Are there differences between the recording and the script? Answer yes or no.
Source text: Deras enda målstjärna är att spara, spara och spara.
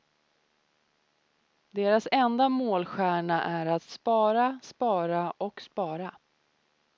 no